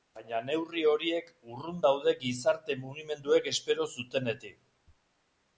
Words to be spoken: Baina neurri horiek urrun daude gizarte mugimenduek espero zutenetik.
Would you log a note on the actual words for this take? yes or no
no